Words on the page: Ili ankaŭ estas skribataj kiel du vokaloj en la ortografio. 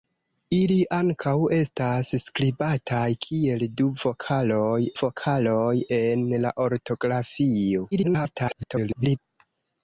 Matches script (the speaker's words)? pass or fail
fail